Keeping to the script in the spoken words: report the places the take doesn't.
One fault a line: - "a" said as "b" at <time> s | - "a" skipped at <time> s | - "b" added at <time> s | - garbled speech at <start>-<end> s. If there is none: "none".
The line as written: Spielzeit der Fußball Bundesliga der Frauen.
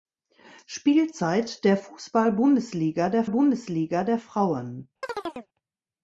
- "Bundesliga der" added at 3.3 s